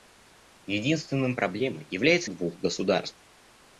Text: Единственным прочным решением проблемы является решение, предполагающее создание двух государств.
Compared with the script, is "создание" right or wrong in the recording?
wrong